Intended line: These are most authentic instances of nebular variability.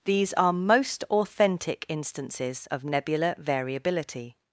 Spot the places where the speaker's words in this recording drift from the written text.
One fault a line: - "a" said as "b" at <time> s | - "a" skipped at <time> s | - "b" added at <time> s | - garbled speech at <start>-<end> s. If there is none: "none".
none